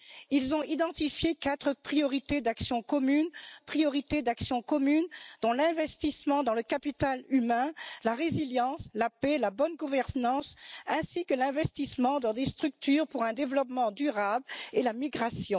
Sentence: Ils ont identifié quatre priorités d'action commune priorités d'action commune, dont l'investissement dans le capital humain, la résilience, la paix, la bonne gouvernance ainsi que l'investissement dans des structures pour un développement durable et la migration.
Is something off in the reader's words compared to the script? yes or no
no